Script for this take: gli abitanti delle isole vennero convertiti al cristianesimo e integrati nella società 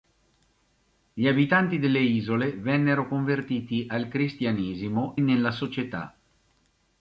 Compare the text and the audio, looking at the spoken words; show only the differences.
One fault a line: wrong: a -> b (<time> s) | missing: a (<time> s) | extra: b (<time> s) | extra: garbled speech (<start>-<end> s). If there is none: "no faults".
missing: e integrati (5.2 s)